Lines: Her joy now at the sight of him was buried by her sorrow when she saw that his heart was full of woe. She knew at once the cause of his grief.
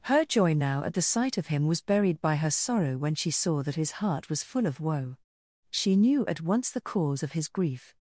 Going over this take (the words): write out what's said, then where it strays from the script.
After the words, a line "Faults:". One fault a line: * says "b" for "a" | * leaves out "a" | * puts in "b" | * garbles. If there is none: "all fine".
Her joy now at the sight of him was buried by her sorrow when she saw that his heart was full of woe. She knew at once the cause of his grief.
Faults:
all fine